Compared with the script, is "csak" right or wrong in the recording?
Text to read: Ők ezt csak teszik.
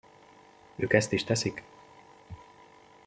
wrong